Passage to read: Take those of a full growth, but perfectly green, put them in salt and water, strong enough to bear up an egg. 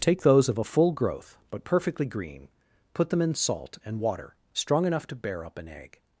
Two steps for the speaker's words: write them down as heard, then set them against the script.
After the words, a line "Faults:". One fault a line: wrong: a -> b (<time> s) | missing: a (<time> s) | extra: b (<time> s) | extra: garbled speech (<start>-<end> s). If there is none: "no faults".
Take those of a full growth, but perfectly green, put them in salt and water, strong enough to bear up an egg.
Faults:
no faults